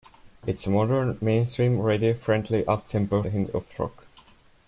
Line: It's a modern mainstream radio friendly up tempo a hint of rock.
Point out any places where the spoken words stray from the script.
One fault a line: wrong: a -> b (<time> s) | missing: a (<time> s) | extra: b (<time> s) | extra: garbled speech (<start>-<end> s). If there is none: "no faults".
no faults